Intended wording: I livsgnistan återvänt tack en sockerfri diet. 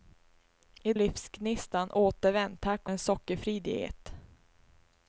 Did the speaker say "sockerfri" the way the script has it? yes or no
yes